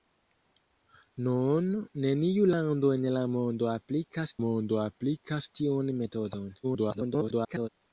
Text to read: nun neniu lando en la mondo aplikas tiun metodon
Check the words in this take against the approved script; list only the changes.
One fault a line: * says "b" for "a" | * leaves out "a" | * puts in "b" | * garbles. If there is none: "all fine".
* puts in "mondo aplikas"
* garbles